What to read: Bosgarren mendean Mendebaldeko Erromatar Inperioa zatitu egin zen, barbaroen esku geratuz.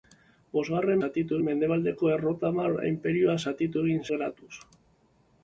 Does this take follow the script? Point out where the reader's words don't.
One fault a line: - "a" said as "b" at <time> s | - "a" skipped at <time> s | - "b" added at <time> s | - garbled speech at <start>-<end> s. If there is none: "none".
- "mendean" said as "zatitu" at 1.0 s
- "zen barbaroen esku" skipped at 4.0 s